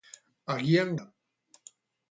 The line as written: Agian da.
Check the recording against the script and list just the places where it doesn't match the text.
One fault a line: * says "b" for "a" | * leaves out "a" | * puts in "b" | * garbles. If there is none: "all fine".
all fine